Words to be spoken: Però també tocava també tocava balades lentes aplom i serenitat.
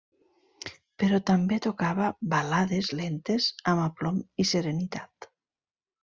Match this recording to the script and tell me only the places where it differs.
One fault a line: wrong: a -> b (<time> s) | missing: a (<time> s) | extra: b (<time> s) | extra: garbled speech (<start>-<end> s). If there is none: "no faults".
missing: també tocava (2.1 s)
extra: amb (3.7 s)